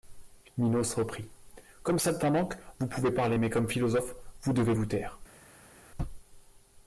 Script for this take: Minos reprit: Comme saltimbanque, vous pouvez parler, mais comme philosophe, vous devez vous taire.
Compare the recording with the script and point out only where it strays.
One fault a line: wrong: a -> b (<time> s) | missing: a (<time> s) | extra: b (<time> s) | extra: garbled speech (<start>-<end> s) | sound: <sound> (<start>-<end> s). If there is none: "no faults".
no faults